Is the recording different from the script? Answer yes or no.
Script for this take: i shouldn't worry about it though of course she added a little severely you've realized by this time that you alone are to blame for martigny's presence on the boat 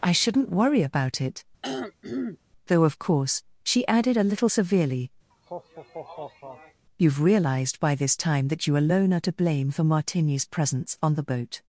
no